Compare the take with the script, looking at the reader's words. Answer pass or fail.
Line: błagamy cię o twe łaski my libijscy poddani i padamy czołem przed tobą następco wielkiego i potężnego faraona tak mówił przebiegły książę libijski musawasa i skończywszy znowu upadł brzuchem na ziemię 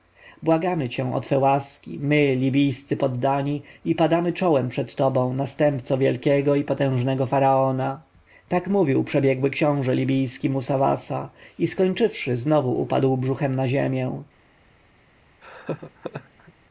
pass